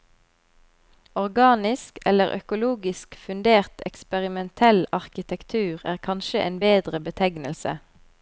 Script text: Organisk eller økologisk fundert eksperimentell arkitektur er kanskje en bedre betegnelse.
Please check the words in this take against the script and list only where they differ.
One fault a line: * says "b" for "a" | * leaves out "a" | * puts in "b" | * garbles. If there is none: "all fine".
all fine